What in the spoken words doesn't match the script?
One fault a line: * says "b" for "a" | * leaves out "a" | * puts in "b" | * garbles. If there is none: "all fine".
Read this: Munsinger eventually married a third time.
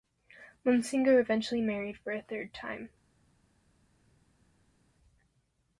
* puts in "for"